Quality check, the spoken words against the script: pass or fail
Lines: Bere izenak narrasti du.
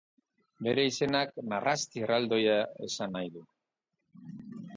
fail